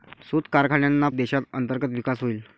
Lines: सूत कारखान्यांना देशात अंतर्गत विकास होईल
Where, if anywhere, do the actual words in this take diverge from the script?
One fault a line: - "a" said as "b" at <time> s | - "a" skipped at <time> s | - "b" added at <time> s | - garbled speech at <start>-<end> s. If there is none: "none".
none